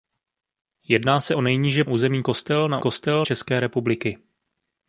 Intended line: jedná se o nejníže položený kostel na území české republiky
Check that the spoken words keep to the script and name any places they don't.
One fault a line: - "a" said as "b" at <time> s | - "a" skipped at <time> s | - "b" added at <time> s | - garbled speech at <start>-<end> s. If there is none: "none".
- "položený" said as "území" at 1.8 s
- "území" said as "kostel" at 2.8 s